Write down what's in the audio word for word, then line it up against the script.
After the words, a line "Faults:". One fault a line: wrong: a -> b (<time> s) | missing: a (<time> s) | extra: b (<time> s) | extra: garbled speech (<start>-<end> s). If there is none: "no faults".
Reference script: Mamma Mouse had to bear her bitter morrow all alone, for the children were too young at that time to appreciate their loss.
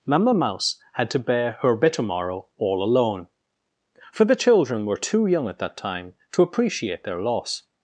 Mamma Mouse had to bear her bitter morrow all alone, for the children were too young at that time to appreciate their loss.
Faults:
no faults